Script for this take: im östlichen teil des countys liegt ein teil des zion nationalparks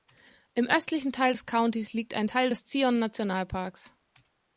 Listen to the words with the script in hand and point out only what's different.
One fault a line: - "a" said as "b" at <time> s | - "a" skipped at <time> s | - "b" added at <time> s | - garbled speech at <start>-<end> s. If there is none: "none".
none